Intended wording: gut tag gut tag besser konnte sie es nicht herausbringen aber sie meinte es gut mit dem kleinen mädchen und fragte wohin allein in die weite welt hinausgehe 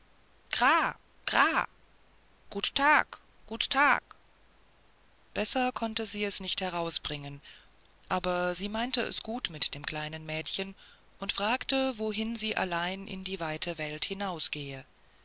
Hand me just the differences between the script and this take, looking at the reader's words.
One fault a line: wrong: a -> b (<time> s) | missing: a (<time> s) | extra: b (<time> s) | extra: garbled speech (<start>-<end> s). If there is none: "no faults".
extra: sie (12.4 s)